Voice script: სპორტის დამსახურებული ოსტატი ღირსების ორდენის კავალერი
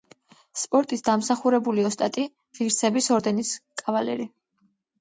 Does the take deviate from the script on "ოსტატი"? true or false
false